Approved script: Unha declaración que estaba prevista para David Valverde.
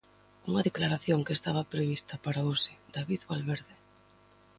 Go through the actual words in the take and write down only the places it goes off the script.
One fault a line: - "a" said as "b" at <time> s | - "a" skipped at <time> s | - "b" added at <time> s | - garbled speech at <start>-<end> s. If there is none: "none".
- "hoxe" added at 2.5 s